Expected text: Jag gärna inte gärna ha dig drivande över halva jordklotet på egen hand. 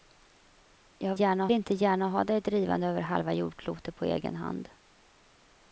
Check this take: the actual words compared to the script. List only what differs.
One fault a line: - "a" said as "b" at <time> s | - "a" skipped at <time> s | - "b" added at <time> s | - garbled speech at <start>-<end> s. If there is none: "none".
none